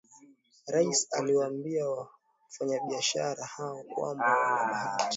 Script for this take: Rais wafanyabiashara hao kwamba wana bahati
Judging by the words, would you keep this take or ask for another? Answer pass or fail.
fail